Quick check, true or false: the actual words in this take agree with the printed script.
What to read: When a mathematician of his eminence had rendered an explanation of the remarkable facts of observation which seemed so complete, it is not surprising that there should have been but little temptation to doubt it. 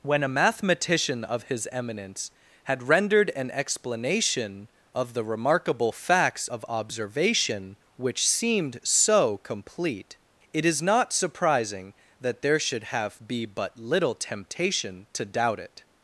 false